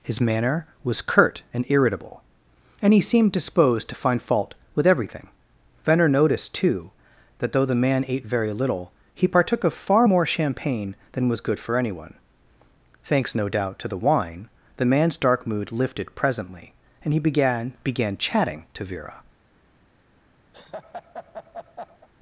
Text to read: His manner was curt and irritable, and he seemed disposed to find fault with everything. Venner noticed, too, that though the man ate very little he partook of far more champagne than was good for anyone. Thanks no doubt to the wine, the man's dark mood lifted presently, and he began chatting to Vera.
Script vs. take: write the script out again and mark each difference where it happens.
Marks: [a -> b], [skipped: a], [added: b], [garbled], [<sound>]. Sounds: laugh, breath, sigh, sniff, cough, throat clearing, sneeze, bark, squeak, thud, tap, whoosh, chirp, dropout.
His manner was curt and irritable, and he seemed disposed to find fault with everything. Venner noticed, too, that though the man ate very little he partook of far more champagne than was good for anyone. Thanks no doubt to the wine, the man's dark mood lifted presently, and he began [added: began] chatting to Vera. [laugh]